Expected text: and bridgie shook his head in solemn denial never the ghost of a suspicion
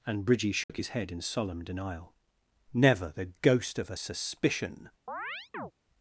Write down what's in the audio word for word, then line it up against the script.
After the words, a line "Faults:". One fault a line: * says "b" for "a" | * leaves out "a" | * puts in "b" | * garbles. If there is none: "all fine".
and bridgie shook his head in solemn denial never the ghost of a suspicion
Faults:
all fine